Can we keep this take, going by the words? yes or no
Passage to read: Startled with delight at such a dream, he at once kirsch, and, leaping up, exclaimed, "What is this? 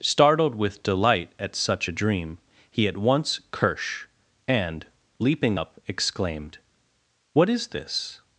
yes